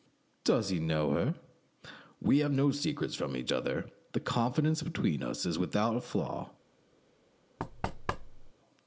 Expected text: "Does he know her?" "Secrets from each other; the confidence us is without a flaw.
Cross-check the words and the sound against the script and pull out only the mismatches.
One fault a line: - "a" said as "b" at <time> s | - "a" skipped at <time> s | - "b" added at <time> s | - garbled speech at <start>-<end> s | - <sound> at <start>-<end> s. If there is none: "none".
- "We have no" added at 2.2 s
- "between" added at 4.8 s
- thud at 7.6-8.5 s